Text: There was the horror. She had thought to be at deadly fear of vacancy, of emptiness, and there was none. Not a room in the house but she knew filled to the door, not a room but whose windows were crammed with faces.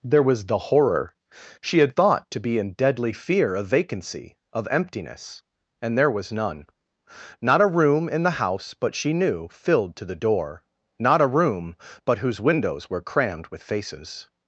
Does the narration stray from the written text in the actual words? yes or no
yes